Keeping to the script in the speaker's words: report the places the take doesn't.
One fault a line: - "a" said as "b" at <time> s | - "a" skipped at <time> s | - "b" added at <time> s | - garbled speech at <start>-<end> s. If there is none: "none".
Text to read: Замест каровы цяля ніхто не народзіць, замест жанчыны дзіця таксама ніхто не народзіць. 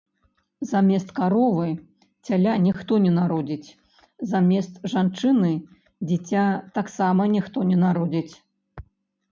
none